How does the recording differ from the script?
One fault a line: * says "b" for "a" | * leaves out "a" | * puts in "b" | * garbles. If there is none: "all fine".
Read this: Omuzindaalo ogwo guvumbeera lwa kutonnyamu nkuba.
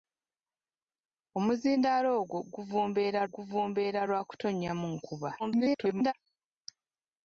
* puts in "guvumbeera"
* garbles